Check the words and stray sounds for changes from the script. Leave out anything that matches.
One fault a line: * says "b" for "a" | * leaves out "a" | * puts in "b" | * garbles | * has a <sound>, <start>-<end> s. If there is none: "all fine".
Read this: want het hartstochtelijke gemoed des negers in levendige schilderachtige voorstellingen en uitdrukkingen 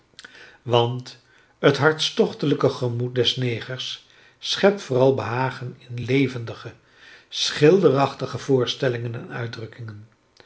* puts in "schept vooral behagen"